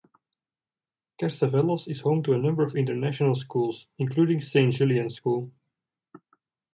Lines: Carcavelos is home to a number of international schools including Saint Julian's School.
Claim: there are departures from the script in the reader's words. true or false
false